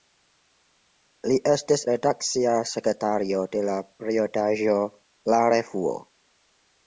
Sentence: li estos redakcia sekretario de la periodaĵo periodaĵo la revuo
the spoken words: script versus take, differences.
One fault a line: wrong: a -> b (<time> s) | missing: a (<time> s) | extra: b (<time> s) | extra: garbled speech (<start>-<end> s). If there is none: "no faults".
wrong: estos -> estis (1.5 s)
missing: periodaĵo (4.8 s)